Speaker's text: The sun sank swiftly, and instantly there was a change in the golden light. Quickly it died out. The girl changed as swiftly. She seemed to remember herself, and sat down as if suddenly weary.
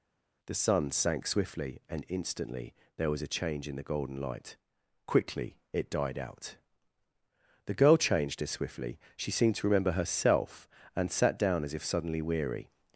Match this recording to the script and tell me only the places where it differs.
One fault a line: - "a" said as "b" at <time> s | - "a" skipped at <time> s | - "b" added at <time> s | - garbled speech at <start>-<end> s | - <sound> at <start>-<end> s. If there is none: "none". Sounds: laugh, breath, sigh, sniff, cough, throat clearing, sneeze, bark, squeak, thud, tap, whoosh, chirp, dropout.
none